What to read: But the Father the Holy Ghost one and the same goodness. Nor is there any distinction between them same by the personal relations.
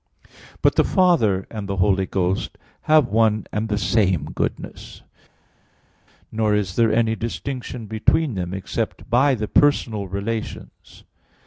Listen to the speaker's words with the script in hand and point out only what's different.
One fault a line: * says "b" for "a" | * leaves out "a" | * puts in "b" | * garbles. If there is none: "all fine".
* puts in "and"
* puts in "have"
* says "except" for "same"